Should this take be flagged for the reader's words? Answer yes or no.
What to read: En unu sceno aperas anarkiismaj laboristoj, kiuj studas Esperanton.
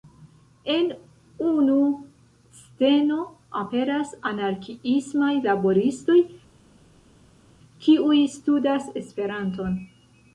no